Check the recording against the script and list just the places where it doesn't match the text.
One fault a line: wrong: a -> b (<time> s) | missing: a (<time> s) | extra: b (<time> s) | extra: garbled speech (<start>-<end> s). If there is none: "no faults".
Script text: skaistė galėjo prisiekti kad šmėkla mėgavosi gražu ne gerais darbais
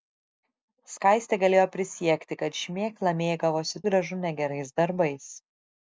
no faults